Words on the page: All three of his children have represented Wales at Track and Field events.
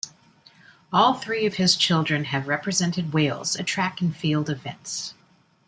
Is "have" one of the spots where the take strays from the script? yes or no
no